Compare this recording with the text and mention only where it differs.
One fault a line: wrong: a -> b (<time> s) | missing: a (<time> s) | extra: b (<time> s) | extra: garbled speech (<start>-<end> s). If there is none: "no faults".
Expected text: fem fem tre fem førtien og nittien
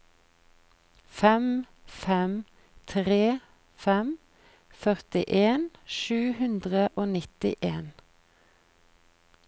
extra: sju hundre (6.0 s)